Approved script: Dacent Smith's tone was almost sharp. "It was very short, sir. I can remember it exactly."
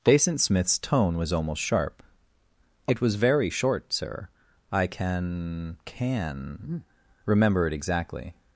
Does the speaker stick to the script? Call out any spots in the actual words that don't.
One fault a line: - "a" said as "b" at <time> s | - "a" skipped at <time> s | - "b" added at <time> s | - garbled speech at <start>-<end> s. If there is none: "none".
- "can" added at 5.8 s